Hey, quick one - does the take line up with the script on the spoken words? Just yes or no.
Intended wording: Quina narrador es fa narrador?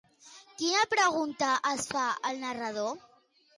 no